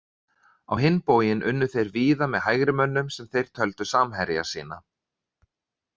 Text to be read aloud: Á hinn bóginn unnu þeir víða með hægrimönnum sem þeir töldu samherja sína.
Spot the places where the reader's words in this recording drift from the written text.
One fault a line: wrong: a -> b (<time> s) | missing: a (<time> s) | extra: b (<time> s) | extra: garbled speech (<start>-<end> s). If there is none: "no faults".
no faults